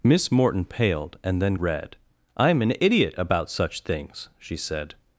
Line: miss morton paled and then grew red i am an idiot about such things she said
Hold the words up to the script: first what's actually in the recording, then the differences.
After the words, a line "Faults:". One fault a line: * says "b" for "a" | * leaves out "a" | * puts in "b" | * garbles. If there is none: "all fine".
miss morton paled and then red i am an idiot about such things she said
Faults:
* leaves out "grew"